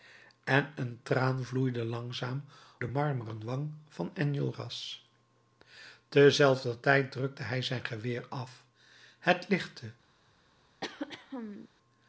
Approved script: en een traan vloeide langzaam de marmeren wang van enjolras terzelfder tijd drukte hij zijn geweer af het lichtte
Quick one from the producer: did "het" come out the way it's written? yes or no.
yes